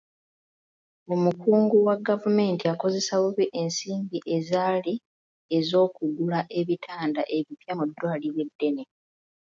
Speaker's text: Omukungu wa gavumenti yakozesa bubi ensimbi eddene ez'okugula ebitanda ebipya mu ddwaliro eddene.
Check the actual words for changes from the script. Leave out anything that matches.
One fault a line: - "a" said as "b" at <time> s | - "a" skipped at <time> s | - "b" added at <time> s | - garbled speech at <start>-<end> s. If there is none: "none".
- "eddene" said as "ezaali" at 4.4 s